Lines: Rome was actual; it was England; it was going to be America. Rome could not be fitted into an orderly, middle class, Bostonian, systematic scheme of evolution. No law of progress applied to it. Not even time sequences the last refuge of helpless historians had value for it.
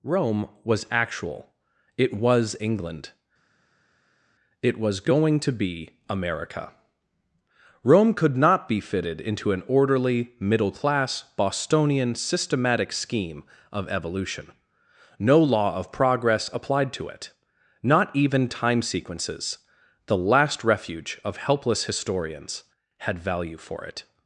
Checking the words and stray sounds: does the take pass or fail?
pass